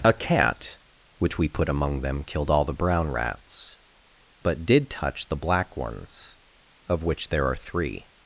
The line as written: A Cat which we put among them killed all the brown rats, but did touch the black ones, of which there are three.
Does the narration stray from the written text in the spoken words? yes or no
no